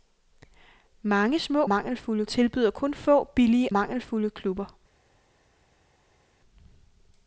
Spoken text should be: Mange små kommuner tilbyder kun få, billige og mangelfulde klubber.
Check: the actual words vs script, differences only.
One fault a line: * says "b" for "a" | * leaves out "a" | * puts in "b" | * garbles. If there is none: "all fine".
* says "mangelfulde" for "kommuner"
* leaves out "og"